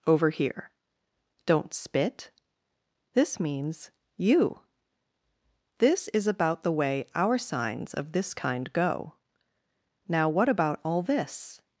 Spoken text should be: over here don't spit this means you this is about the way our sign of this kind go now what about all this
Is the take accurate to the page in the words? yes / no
no